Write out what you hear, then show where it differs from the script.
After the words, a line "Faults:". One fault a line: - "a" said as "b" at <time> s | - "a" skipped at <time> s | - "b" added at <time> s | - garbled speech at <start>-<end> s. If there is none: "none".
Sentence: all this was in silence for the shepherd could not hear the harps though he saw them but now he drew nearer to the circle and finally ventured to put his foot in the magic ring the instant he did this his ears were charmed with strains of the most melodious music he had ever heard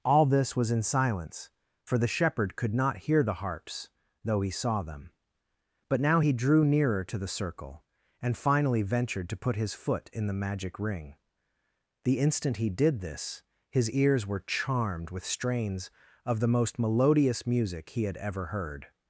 all this was in silence for the shepherd could not hear the harps though he saw them but now he drew nearer to the circle and finally ventured to put his foot in the magic ring the instant he did this his ears were charmed with strains of the most melodious music he had ever heard
Faults:
none